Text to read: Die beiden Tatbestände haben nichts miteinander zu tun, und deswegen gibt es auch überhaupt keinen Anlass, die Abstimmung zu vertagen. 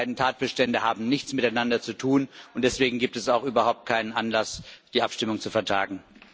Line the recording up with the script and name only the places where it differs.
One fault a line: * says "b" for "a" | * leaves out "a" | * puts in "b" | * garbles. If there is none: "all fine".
all fine